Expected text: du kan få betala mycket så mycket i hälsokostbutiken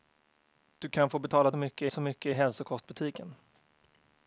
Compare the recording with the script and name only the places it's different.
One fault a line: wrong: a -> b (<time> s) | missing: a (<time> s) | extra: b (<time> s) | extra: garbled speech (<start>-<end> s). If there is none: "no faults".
no faults